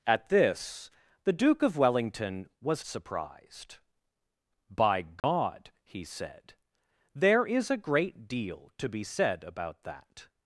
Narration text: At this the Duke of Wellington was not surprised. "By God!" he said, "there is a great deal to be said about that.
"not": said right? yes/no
no